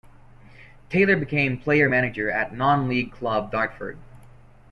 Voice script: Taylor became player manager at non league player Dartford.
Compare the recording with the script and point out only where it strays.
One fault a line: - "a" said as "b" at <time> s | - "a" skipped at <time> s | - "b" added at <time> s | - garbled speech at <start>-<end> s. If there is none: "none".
- "player" said as "club" at 3.1 s